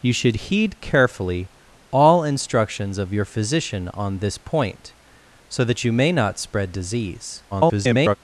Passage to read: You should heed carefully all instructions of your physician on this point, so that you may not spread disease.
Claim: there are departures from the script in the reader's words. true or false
true